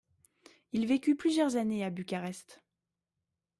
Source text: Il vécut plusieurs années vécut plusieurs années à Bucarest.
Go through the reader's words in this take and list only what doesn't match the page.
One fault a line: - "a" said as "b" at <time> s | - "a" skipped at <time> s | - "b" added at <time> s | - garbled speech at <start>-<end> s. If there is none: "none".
- "vécut plusieurs années" skipped at 1.8 s